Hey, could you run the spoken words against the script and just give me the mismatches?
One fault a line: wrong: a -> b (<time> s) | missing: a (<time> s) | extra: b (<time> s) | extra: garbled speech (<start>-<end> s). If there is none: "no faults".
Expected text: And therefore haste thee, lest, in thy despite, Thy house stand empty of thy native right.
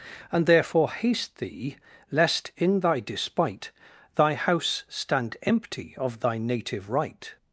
no faults